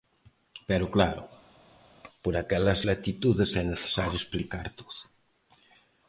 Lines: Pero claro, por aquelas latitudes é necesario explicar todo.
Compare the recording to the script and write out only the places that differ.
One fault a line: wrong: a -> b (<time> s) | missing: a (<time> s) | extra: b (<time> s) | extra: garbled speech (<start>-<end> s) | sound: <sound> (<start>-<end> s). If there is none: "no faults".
no faults